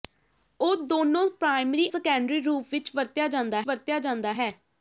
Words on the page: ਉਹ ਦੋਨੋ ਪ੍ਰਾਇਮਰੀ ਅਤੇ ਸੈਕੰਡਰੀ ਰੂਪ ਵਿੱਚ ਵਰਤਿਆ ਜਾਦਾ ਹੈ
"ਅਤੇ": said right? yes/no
no